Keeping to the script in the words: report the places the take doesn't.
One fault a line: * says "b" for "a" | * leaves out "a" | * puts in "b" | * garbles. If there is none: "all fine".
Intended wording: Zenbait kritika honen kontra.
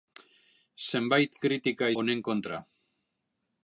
all fine